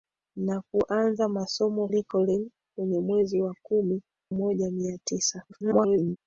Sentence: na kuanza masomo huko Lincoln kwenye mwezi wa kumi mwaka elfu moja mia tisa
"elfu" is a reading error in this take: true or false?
true